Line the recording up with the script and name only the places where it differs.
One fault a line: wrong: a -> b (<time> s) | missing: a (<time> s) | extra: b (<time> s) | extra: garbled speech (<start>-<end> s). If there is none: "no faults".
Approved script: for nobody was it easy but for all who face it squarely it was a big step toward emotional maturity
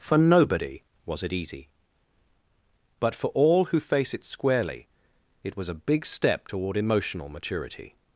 no faults